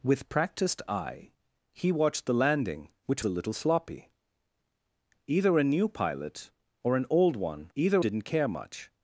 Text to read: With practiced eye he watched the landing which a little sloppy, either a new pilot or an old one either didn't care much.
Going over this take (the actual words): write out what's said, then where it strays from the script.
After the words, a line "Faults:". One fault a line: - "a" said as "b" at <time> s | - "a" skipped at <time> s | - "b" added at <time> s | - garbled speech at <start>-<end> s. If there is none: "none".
With practiced eye he watched the landing which a little sloppy, either a new pilot or an old one either didn't care much.
Faults:
none